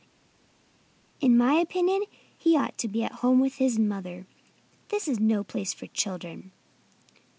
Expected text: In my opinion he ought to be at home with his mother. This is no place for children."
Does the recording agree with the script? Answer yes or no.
yes